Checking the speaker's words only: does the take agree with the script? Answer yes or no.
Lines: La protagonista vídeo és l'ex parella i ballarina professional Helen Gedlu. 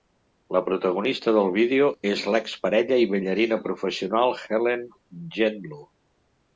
no